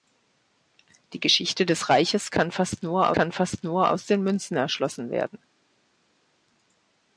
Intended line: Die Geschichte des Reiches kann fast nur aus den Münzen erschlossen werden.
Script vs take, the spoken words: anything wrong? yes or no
yes